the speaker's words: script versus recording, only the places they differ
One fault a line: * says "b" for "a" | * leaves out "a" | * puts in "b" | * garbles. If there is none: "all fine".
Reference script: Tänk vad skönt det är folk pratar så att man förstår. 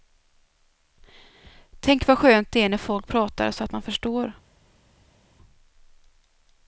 * puts in "när"